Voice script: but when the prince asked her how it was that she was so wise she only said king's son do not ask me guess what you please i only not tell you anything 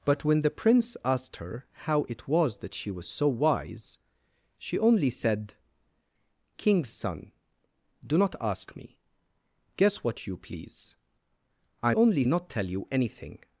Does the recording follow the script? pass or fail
pass